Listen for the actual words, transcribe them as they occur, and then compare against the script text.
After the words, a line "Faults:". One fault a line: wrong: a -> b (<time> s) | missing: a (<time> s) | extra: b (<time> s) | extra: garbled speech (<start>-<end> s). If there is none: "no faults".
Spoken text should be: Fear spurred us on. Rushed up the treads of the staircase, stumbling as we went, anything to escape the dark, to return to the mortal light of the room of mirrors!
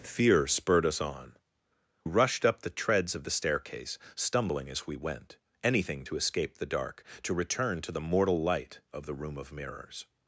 Fear spurred us on. Rushed up the treads of the staircase, stumbling as we went, anything to escape the dark, to return to the mortal light of the room of mirrors!
Faults:
no faults